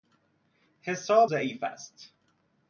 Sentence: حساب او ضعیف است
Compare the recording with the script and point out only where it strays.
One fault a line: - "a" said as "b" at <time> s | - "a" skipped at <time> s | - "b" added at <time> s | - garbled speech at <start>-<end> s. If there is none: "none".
- "او" skipped at 1.3 s